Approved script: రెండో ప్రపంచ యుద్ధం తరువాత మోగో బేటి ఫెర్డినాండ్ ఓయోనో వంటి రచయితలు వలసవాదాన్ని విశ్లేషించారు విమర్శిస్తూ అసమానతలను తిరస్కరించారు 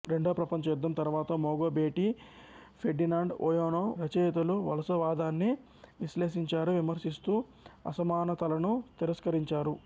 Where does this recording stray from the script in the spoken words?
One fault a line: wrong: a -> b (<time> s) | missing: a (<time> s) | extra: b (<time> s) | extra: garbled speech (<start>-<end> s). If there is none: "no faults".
missing: వంటి (3.8 s)